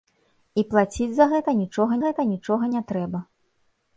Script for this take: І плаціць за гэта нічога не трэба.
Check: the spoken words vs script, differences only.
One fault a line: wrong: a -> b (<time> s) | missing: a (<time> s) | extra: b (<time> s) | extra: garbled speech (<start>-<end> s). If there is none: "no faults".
extra: гэта нічога (2.1 s)